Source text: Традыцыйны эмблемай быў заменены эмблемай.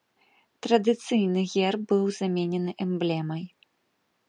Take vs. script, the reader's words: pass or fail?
fail